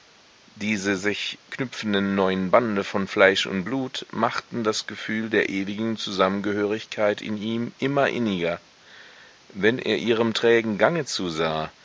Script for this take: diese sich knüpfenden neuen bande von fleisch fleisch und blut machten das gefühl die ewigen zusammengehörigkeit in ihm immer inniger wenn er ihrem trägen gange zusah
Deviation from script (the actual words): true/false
true